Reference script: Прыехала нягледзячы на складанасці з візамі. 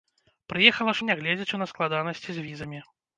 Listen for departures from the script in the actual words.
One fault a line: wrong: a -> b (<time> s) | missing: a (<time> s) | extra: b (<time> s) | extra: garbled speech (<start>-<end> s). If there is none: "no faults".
no faults